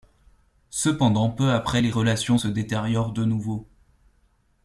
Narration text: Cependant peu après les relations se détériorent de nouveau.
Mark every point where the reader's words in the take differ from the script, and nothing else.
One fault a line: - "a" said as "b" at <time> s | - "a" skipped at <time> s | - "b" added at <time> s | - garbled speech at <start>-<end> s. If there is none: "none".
none